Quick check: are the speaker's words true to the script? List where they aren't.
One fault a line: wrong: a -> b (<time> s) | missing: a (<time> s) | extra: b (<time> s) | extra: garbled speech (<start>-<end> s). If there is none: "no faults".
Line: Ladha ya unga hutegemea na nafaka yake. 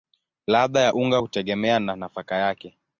no faults